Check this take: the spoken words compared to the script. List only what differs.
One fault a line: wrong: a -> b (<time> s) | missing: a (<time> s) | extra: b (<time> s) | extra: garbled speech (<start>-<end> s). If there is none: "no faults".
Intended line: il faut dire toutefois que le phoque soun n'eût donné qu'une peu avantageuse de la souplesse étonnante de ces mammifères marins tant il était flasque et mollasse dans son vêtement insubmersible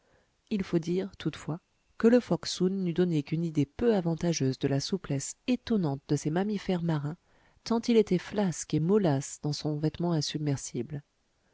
extra: idée (3.5 s)